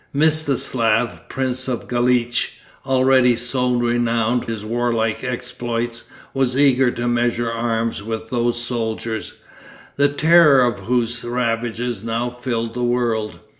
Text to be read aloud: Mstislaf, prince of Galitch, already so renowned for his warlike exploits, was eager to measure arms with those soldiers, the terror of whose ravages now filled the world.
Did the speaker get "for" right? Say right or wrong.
wrong